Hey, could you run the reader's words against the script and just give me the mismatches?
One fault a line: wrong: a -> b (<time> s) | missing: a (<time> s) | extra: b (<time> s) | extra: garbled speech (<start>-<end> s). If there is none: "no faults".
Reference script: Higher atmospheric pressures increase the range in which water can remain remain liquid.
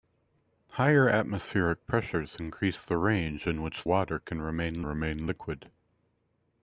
no faults